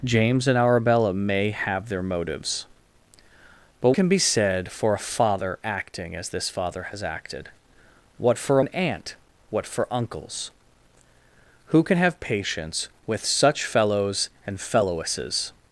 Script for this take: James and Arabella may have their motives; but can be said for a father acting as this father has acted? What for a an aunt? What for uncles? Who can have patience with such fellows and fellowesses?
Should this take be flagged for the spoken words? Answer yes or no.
no